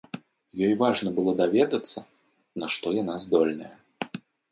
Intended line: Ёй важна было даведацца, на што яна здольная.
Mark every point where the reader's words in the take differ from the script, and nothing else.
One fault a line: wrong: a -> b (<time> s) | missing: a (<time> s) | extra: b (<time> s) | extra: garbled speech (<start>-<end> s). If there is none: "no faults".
no faults